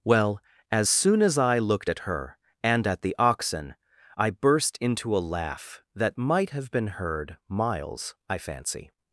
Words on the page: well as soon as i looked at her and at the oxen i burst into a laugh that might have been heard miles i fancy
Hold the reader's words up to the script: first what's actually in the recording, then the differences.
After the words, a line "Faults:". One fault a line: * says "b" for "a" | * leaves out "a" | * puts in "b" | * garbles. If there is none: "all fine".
well as soon as i looked at her and at the oxen i burst into a laugh that might have been heard miles i fancy
Faults:
all fine